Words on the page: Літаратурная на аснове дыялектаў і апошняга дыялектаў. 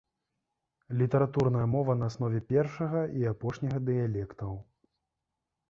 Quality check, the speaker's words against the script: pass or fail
fail